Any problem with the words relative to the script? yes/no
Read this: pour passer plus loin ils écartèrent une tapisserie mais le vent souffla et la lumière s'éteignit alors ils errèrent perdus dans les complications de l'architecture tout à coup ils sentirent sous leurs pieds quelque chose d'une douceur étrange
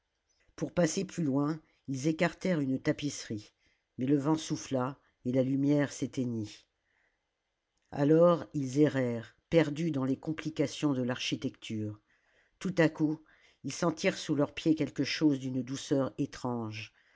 no